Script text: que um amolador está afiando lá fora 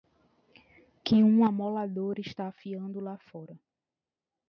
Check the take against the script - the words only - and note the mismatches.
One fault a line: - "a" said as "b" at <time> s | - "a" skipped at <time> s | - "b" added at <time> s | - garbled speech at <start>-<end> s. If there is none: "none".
none